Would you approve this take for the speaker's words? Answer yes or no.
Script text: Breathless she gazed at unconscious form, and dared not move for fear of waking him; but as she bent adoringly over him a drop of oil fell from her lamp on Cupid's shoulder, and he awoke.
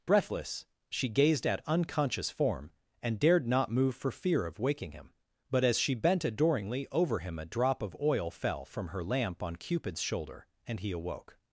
yes